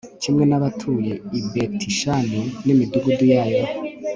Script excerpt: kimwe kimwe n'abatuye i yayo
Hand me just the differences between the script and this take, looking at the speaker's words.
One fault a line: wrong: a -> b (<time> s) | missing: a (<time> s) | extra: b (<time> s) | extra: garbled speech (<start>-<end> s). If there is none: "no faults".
missing: kimwe (0.4 s)
extra: betishani n'imidugudu (1.5 s)